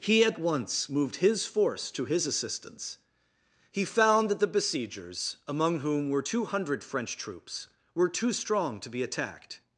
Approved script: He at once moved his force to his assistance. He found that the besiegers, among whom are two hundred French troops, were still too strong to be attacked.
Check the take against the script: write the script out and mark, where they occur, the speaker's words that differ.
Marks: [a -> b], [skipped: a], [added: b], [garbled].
He at once moved his force to his assistance. He found that the besiegers, among whom [are -> were] two hundred French troops, were [skipped: still] too strong to be attacked.